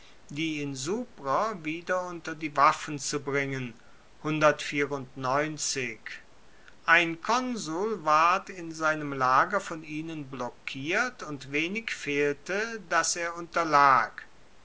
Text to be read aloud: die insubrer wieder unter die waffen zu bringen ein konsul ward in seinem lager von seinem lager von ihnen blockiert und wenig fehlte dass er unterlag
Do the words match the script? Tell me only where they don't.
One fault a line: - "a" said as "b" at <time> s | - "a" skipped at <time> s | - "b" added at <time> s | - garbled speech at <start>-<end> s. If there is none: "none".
- "seinem lager von" skipped at 9.8 s